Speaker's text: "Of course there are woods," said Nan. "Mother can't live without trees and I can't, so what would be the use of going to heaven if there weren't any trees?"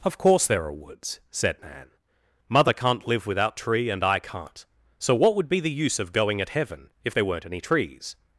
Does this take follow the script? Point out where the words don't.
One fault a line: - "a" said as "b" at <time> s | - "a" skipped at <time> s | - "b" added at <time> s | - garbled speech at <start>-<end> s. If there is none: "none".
- "trees" said as "tree" at 3.6 s
- "to" said as "at" at 6.4 s